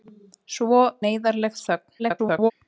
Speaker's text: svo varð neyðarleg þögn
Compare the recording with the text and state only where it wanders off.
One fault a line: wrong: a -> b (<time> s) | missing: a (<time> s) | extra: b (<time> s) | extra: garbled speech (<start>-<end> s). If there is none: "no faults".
missing: varð (0.8 s)
extra: garbled speech (2.0-2.5 s)